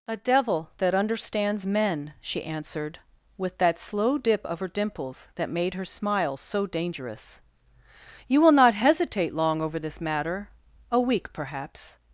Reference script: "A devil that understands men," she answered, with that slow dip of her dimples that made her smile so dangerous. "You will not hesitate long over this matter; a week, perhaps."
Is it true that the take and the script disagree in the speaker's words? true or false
false